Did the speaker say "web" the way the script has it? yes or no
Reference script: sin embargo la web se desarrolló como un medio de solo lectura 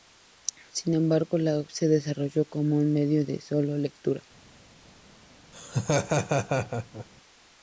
no